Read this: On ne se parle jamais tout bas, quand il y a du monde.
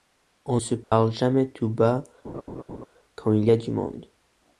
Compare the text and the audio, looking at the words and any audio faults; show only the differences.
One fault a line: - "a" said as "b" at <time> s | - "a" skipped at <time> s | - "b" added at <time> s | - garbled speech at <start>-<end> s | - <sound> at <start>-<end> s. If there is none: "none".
- "ne" skipped at 0.6 s
- dropout at 0.8-0.9 s
- laugh at 2.2-2.9 s